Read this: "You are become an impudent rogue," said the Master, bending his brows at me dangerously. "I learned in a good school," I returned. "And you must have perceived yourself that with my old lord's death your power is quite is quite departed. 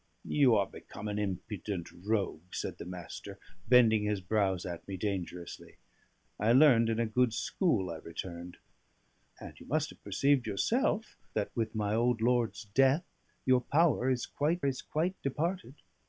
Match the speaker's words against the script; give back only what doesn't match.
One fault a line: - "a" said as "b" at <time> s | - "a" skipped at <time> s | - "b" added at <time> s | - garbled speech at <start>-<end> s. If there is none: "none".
none